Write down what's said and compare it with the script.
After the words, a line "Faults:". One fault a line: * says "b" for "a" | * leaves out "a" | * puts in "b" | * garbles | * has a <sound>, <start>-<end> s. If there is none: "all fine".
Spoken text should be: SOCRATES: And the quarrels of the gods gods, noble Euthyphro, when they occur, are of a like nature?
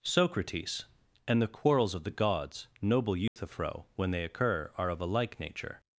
SOCRATES: And the quarrels of the gods, noble Euthyphro, when they occur, are of a like nature?
Faults:
* leaves out "gods"
* has a dropout, 3.3-3.4 s